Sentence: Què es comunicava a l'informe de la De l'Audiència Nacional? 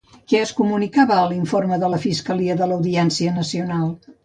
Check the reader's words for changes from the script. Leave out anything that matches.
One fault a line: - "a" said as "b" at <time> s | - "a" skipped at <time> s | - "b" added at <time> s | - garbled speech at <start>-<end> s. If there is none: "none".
- "Fiscalia" added at 2.0 s